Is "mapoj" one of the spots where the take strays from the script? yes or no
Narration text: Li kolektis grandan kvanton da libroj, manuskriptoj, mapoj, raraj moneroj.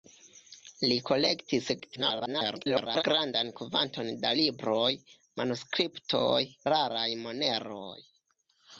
yes